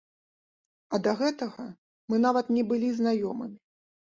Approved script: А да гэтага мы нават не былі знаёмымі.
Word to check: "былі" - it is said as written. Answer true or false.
true